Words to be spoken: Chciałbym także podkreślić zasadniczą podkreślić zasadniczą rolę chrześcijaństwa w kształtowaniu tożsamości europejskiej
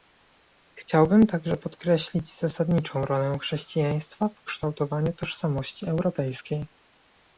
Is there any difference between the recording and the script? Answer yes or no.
yes